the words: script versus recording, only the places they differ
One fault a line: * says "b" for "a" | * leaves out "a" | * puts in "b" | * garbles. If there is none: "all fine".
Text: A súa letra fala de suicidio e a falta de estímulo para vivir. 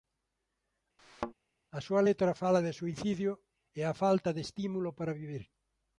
all fine